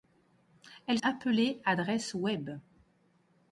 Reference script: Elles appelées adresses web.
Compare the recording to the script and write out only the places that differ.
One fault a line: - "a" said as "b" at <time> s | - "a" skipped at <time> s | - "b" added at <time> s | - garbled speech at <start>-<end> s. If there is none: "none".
none